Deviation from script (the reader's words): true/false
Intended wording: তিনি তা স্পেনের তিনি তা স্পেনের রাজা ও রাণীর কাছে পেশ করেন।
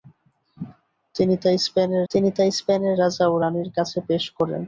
false